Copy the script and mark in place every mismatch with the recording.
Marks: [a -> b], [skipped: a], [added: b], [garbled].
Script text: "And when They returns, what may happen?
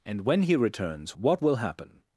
"And when [They -> He] returns, what [may -> will] happen?